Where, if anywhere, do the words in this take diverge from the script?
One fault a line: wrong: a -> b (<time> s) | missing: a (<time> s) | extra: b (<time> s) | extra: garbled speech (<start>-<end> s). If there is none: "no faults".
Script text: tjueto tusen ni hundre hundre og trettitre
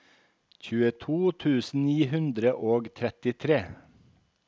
missing: hundre (2.6 s)